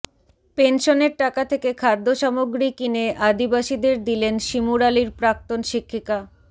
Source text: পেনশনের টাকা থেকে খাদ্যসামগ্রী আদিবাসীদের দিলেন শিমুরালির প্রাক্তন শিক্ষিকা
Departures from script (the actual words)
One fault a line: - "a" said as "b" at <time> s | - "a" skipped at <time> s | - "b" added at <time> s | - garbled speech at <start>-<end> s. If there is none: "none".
- "কিনে" added at 2.8 s